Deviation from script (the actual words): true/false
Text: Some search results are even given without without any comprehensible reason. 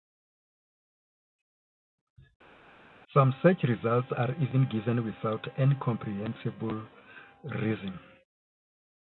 true